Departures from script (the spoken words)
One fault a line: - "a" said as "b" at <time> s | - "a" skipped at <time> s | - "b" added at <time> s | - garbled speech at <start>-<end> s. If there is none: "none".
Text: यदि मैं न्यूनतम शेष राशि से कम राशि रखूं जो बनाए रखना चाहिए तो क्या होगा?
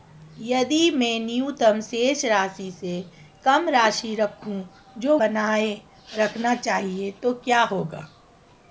none